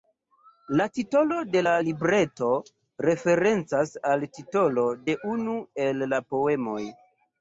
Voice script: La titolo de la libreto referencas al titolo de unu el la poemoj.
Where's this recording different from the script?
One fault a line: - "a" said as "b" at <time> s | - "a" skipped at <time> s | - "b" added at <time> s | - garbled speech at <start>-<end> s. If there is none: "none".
none